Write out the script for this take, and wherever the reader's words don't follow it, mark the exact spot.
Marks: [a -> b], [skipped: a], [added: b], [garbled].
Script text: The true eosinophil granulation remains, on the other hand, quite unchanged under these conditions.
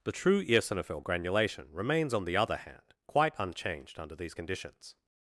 The true eosinophil granulation remains, on the other hand, quite unchanged under these conditions.